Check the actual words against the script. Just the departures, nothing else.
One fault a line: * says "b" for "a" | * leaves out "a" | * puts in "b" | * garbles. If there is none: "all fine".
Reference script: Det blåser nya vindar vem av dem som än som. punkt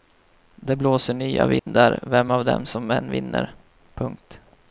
* says "vinner" for "som"